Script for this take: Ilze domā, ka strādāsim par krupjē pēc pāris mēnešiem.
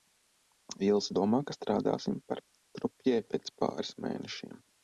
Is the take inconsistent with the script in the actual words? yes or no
no